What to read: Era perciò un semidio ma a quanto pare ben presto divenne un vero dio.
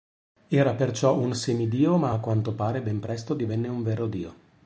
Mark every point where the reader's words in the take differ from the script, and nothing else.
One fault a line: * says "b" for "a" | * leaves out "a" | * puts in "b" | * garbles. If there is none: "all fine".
all fine